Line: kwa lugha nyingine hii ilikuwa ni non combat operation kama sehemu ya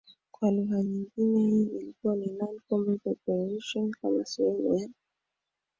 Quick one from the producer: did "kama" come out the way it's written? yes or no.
yes